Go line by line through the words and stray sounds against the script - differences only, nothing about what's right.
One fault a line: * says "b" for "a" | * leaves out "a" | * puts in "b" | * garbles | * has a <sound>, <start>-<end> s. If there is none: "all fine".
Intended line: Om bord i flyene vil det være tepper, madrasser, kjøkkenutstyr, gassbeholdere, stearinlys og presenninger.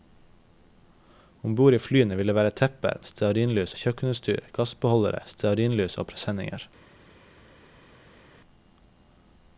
* says "stearinlys" for "madrasser"